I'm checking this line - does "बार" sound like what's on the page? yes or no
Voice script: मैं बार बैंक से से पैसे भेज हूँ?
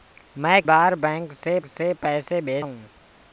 yes